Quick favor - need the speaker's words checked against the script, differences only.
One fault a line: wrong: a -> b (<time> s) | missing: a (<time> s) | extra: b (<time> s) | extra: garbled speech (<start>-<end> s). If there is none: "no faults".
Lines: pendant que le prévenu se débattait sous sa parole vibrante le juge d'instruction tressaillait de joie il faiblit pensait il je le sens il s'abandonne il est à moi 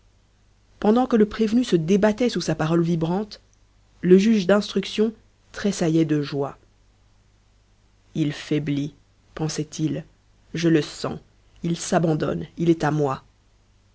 no faults